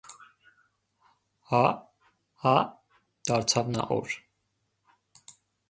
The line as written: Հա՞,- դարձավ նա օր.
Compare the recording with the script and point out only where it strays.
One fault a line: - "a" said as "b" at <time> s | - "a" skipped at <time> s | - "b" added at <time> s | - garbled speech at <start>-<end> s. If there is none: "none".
- "հա" added at 2.4 s